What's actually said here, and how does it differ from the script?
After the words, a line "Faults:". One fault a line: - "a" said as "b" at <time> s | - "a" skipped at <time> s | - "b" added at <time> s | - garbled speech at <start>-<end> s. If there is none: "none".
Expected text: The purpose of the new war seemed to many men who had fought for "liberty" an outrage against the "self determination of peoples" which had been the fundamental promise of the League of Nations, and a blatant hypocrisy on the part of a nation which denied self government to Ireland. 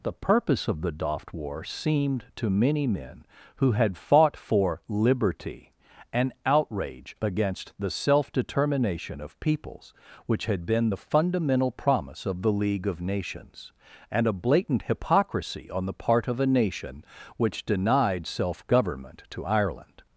The purpose of the doft war seemed to many men who had fought for "liberty" an outrage against the "self determination of peoples" which had been the fundamental promise of the League of Nations, and a blatant hypocrisy on the part of a nation which denied self government to Ireland.
Faults:
- "new" said as "doft" at 0.9 s